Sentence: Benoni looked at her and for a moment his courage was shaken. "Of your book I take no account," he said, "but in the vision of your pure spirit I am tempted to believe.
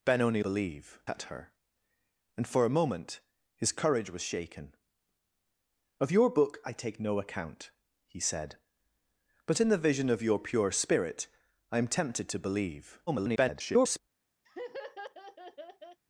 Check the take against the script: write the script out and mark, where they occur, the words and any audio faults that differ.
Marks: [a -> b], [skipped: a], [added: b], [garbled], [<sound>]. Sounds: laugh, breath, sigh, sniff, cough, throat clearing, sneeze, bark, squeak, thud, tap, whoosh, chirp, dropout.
Benoni [looked -> believe] at her and for a moment his courage was shaken. "Of your book I take no account," he said, "but in the vision of your pure spirit I am tempted to believe. [garbled] [laugh]